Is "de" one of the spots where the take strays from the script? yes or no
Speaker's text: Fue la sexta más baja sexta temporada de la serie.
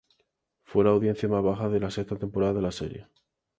no